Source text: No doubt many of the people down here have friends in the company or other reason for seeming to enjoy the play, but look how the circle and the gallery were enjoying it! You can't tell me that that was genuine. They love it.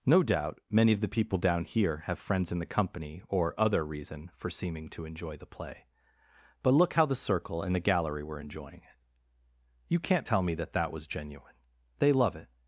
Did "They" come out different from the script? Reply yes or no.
no